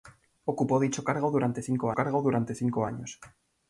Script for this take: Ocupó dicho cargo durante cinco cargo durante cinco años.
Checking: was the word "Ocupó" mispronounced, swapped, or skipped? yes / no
no